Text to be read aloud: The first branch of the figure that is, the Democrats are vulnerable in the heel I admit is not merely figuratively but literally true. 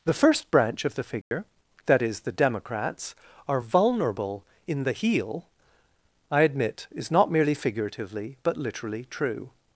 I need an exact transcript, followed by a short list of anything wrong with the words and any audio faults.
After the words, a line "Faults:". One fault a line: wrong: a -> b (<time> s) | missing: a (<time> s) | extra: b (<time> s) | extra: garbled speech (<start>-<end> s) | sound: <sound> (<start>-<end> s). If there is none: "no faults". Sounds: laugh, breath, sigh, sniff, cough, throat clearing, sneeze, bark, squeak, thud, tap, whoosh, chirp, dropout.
The first branch of the figure that is, the Democrats are vulnerable in the heel I admit is not merely figuratively but literally true.
Faults:
sound: dropout (1.2-1.3 s)